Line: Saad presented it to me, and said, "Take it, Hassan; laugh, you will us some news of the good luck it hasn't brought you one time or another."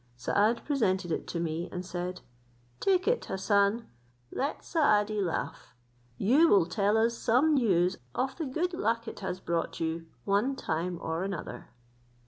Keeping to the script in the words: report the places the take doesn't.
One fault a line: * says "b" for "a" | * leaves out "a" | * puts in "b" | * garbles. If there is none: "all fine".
* puts in "let Saadi"
* puts in "tell"
* says "has" for "hasn't"